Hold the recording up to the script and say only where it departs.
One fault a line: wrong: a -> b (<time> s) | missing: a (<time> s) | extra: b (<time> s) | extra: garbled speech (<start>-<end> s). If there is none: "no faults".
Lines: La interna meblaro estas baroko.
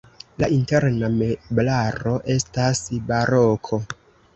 no faults